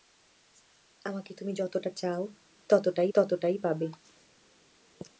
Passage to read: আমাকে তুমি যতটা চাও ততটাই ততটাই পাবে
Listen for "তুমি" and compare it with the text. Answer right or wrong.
right